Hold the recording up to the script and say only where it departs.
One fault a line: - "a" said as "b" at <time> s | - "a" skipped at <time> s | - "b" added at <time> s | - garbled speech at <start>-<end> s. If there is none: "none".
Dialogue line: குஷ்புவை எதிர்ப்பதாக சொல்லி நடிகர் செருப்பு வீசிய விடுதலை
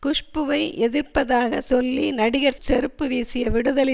none